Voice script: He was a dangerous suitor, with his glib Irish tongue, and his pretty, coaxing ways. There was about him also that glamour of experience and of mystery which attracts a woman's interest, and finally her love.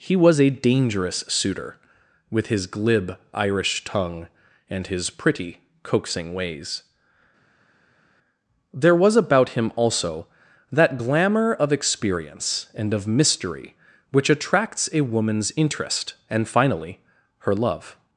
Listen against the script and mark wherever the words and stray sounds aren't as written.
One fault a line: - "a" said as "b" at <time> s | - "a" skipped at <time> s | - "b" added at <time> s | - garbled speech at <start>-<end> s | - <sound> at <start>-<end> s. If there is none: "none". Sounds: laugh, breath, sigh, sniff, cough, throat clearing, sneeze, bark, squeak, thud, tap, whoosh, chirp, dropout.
none